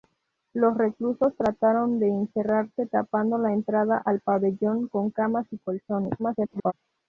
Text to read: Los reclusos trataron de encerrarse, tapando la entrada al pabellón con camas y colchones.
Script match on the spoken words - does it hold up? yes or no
no